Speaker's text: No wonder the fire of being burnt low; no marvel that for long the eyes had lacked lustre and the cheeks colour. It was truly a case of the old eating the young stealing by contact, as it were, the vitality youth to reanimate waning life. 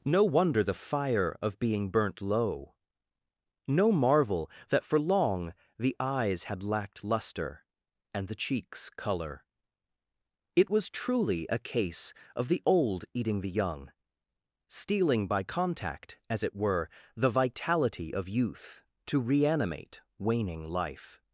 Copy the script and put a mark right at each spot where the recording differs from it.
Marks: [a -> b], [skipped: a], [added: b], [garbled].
No wonder the fire of being burnt low; no marvel that for long the eyes had lacked lustre and the cheeks colour. It was truly a case of the old eating the young stealing by contact, as it were, the vitality [added: of] youth to reanimate waning life.